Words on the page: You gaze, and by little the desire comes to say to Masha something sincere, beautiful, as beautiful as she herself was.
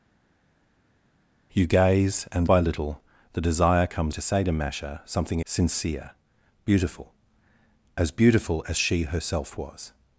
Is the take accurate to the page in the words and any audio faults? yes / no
yes